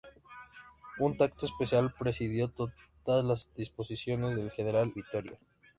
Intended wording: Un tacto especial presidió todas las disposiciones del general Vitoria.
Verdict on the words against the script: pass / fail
pass